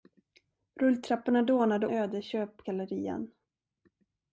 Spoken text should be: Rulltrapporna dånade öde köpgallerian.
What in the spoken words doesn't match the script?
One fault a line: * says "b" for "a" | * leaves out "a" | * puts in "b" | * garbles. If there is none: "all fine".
all fine